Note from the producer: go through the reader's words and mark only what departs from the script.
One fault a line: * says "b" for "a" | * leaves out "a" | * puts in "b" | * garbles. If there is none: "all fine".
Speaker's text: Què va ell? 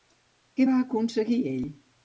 * puts in "aconseguir"